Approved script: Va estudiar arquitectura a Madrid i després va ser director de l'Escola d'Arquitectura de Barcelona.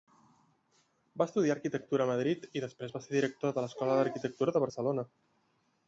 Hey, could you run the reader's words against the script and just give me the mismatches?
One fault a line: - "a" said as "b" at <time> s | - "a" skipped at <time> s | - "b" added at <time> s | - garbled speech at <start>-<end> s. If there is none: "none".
none